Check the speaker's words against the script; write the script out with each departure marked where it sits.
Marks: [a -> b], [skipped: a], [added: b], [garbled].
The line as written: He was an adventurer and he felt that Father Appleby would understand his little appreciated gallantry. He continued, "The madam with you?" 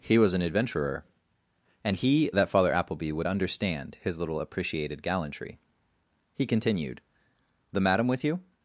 He was an adventurer and he [skipped: felt] that Father Appleby would understand his little appreciated gallantry. He continued, "The madam with you?"